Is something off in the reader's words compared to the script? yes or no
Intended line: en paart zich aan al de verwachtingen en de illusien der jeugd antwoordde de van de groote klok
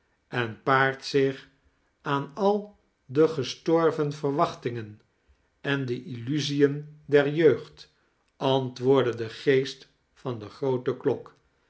yes